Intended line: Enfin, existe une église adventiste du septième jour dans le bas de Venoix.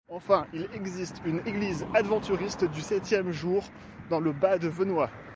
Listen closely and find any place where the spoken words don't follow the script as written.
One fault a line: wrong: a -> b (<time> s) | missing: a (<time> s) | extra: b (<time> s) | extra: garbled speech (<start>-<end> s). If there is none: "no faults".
extra: il (0.5 s)